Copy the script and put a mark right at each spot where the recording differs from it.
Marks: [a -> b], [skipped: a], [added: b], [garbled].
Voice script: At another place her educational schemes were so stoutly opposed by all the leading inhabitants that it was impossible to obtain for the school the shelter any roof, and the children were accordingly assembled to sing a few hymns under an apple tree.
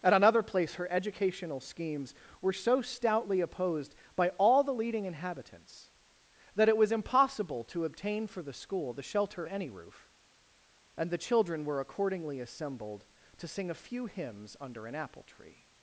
At another place her educational schemes were so stoutly opposed by all the leading inhabitants that it was impossible to obtain for the school the shelter any roof, and the children were accordingly assembled to sing a few hymns under an apple tree.